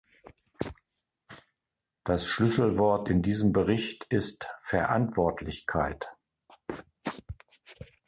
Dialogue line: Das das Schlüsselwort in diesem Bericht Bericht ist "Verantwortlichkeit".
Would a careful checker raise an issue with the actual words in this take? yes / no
yes